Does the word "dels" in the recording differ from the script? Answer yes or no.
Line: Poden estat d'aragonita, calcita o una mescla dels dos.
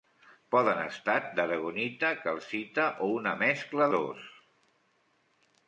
yes